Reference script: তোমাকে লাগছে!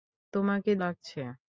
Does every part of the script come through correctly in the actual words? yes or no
yes